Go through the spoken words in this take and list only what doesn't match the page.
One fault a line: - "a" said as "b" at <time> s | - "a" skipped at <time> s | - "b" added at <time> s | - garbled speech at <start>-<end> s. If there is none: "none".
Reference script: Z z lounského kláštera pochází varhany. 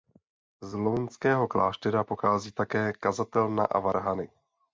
- "z" skipped at 0.8 s
- "také kazatelna a" added at 2.5 s